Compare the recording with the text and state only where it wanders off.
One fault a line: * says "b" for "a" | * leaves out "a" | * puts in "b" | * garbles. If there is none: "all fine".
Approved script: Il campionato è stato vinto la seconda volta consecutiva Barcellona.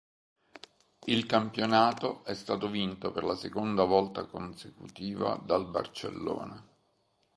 * puts in "per"
* puts in "dal"